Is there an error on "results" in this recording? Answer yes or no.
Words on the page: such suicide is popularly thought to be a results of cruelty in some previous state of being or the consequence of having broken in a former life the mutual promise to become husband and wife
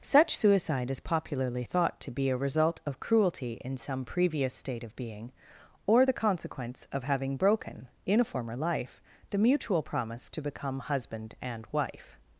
yes